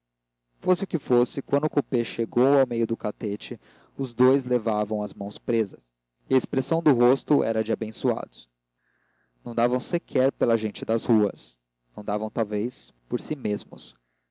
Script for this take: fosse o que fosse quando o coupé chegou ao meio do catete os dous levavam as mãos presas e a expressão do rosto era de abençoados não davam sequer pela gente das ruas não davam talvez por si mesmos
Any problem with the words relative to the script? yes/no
no